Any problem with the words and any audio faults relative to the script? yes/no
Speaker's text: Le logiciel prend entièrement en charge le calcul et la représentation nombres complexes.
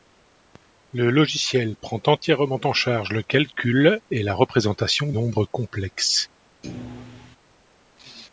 yes